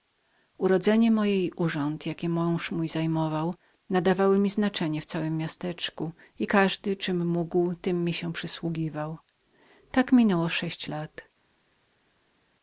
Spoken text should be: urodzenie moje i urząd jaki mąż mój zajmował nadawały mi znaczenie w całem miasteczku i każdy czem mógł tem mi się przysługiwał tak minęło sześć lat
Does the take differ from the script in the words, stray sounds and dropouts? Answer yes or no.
no